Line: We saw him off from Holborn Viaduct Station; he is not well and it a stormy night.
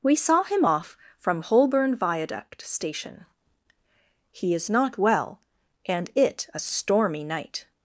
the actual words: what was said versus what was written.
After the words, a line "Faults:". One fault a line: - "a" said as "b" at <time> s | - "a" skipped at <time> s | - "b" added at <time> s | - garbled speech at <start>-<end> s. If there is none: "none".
We saw him off from Holborn Viaduct Station; he is not well and it a stormy night.
Faults:
none